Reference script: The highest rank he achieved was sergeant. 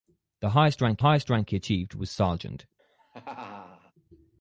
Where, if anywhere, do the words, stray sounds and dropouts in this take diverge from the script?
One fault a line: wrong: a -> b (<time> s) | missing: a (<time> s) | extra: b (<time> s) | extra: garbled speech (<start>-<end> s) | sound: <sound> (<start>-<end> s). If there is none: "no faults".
extra: highest rank (1.0 s)
sound: laugh (2.8-3.9 s)